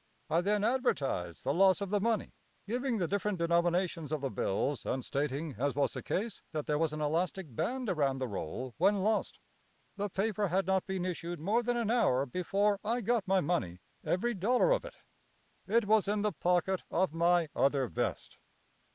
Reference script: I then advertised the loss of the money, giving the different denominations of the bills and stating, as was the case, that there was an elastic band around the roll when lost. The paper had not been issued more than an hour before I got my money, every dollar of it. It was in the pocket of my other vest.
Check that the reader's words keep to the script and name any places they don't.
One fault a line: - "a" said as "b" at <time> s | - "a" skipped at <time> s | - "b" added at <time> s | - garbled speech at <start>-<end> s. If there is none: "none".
none